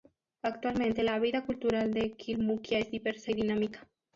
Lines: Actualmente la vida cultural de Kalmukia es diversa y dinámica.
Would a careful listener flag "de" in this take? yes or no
no